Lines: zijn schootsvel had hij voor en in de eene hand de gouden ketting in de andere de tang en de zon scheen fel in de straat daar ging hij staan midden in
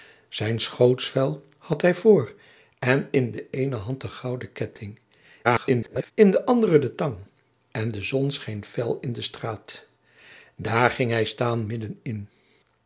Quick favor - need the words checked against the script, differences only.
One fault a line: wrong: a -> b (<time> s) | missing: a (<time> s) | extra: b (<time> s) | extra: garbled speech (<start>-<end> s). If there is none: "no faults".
extra: garbled speech (5.4-6.1 s)